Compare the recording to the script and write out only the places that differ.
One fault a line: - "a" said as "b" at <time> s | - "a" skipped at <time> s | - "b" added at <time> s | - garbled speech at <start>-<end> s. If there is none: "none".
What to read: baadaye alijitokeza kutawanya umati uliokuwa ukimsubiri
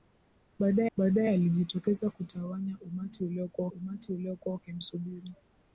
- "baadaye" added at 1.0 s
- "umati uliokuwa" added at 3.7 s